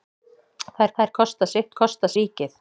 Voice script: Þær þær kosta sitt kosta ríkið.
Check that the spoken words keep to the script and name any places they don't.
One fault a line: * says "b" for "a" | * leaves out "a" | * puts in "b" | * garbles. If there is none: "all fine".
all fine